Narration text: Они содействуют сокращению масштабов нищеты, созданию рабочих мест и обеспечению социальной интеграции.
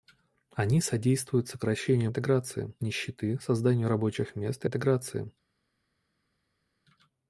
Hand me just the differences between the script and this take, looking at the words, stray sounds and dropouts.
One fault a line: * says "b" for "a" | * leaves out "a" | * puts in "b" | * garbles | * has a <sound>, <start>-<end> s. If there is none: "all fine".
* says "интеграции" for "масштабов"
* leaves out "обеспечению социальной"